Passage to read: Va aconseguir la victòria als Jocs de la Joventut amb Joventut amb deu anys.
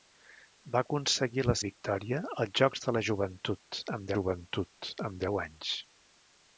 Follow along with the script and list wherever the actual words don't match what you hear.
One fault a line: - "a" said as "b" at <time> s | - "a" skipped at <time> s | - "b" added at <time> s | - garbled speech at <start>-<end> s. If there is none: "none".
none